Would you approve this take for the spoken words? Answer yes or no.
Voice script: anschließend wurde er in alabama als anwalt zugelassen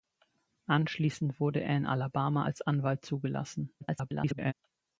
no